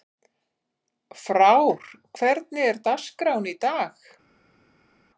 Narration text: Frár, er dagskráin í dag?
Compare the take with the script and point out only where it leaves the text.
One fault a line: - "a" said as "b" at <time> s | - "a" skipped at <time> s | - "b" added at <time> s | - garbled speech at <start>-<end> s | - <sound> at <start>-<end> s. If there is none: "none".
- "hvernig" added at 2.2 s